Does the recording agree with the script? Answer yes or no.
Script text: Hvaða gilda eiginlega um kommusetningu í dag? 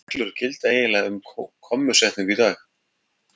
no